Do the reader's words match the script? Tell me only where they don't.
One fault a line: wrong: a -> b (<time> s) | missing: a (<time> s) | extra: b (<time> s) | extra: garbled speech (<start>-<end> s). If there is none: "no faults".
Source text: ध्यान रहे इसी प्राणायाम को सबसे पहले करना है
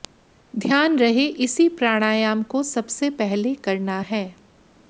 no faults